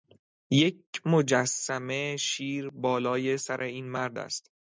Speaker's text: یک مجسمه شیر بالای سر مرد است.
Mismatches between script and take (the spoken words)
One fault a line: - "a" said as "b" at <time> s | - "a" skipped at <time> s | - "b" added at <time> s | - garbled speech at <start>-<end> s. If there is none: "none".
- "این" added at 3.6 s